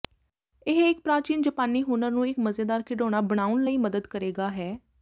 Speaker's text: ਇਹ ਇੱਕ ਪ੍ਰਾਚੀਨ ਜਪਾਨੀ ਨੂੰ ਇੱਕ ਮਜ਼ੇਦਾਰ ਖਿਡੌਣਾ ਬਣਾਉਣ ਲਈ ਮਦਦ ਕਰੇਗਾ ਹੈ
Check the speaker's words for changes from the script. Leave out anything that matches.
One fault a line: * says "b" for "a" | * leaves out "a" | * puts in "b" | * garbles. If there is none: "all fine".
* puts in "ਹੁਨਰ"